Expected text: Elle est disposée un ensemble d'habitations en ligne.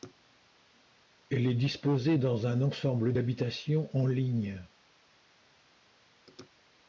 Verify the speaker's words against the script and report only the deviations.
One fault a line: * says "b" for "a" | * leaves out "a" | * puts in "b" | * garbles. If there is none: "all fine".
* puts in "dans"